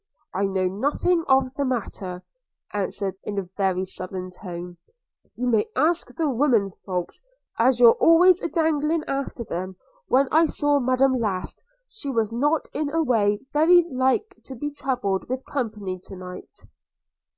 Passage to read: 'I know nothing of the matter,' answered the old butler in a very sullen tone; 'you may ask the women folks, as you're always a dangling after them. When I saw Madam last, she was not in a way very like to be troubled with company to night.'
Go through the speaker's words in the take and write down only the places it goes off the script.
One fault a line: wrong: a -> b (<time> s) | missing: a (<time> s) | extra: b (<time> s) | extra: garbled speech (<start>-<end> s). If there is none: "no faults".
missing: the old butler (3.2 s)